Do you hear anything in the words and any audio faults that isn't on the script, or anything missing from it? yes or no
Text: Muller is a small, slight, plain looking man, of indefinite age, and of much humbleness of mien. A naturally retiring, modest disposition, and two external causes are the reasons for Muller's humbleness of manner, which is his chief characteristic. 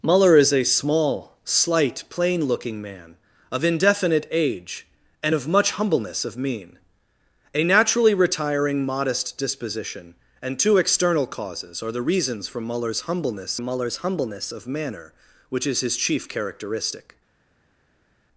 yes